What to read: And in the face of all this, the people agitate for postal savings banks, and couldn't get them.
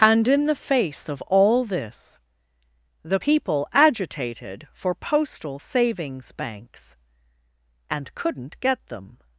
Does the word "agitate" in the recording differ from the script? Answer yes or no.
yes